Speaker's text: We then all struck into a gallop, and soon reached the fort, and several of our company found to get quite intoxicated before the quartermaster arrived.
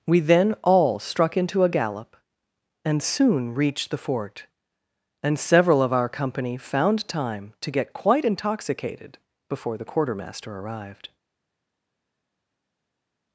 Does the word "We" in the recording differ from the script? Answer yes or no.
no